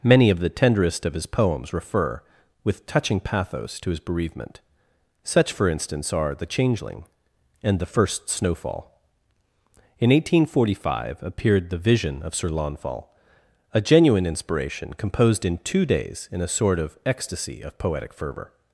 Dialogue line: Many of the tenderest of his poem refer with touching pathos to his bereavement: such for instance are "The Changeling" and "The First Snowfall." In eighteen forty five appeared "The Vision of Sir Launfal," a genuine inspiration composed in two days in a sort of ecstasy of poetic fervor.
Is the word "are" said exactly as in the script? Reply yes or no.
yes